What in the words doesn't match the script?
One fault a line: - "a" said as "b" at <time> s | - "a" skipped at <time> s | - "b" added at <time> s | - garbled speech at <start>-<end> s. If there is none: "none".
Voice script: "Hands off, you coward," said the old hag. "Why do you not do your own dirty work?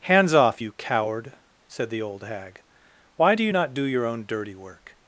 none